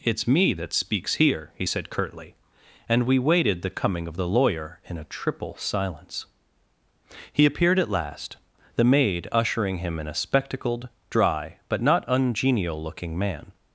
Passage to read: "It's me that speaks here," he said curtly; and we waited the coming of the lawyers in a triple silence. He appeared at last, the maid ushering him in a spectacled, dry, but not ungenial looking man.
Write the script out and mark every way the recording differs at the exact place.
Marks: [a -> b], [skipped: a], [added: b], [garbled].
"It's me that speaks here," he said curtly; and we waited the coming of the [lawyers -> lawyer] in a triple silence. He appeared at last, the maid ushering him in a spectacled, dry, but not ungenial looking man.